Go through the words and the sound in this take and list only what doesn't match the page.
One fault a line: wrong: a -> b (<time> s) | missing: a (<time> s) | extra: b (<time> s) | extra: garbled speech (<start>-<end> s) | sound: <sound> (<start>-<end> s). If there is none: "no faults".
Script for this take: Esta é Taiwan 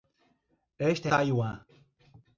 no faults